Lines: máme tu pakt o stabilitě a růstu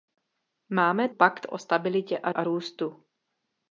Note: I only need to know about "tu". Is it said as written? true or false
false